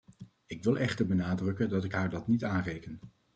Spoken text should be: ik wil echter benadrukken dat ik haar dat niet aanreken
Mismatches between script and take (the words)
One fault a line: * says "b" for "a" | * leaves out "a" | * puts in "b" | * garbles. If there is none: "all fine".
all fine